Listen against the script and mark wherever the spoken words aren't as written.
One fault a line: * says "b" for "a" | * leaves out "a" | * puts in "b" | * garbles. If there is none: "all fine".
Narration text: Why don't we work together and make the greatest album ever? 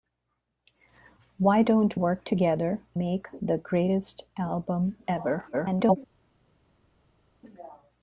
* leaves out "we"
* leaves out "and"
* garbles